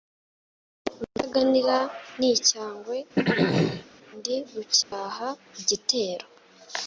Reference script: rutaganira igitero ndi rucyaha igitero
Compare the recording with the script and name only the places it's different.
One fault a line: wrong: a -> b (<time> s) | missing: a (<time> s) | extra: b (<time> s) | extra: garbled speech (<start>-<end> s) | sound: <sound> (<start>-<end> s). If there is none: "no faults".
wrong: igitero -> n'icyangwe (2.2 s)
sound: throat clearing (3.2-3.9 s)
sound: dropout (4.8-4.9 s)